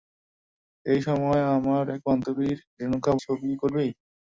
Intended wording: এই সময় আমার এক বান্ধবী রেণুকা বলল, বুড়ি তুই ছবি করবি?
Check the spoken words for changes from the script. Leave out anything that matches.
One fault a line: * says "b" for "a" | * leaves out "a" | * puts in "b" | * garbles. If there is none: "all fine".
* leaves out "বলল বুড়ি তুই"